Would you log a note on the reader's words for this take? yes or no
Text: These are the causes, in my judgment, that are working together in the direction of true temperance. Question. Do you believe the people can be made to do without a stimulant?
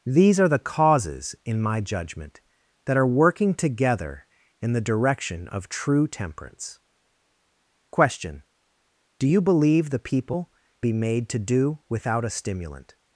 yes